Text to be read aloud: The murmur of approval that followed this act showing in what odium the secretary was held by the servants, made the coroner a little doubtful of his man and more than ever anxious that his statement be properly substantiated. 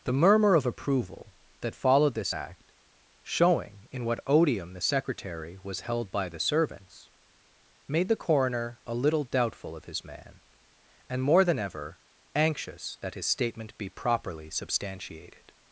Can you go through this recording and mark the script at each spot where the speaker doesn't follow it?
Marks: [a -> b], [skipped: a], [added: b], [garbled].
The murmur of approval that followed this act showing in what odium the secretary was held by the servants, made the coroner a little doubtful of his man and more than ever anxious that his statement be properly substantiated.